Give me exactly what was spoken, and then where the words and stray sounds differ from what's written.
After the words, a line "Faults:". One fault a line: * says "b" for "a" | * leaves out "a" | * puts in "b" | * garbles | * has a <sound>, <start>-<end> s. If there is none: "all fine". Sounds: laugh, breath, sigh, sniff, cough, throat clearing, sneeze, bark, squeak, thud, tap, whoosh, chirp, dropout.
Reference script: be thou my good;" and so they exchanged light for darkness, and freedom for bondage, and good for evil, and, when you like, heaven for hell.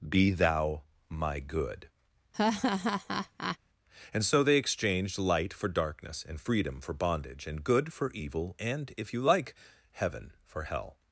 be thou my good;" and so they exchanged light for darkness, and freedom for bondage, and good for evil, and, if you like, heaven for hell.
Faults:
* has a laugh, 2.3-3.6 s
* says "if" for "when"